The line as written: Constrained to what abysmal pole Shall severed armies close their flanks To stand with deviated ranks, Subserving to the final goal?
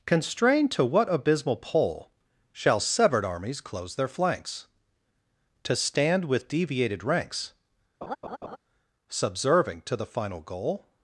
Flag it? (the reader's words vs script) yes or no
no